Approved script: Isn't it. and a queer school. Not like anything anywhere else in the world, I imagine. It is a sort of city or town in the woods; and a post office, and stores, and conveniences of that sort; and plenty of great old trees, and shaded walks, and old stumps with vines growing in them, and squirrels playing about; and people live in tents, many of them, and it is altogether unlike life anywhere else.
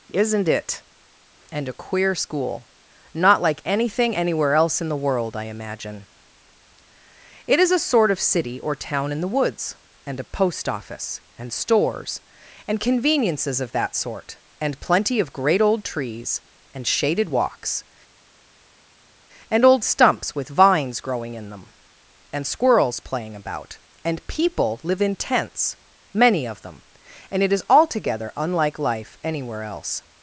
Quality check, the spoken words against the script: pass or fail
pass